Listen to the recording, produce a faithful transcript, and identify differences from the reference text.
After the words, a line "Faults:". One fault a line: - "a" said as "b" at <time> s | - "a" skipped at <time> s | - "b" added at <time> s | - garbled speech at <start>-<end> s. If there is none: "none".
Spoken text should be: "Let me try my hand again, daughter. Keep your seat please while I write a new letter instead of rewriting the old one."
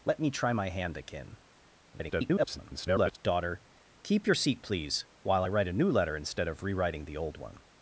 "Let me try my hand again, [garbled] daughter. Keep your seat please while I write a new letter instead of rewriting the old one."
Faults:
- garbled speech at 1.9-3.2 s